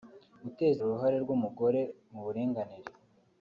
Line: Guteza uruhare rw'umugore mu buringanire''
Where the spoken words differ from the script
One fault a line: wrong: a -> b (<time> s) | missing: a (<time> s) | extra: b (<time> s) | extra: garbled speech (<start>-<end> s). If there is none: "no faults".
no faults